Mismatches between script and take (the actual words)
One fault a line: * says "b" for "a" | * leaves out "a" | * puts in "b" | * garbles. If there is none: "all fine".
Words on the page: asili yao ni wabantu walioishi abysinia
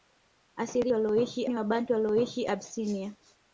* says "walioishi" for "yao"